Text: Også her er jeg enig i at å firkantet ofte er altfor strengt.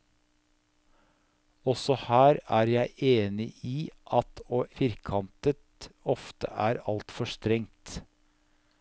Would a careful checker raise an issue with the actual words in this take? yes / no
no